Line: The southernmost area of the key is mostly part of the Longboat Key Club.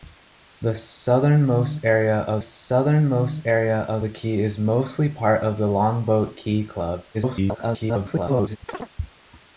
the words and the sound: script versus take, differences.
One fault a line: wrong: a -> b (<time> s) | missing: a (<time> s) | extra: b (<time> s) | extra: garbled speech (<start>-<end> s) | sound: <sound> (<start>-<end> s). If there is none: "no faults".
extra: southernmost area of (2.4 s)
extra: garbled speech (7.1-8.6 s)
sound: chirp (8.7-8.9 s)